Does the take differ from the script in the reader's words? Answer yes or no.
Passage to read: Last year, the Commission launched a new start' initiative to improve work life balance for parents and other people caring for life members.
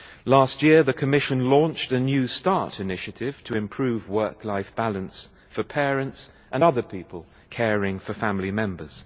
yes